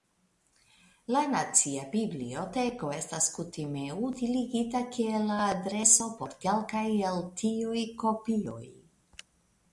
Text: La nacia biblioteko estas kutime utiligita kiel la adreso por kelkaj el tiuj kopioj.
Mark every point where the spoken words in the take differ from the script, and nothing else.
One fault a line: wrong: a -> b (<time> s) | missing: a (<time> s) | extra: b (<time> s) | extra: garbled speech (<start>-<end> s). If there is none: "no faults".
no faults